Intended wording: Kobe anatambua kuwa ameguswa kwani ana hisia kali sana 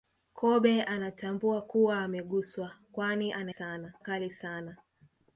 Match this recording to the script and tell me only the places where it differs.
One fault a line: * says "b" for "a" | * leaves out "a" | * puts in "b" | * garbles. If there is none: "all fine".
* says "sana" for "hisia"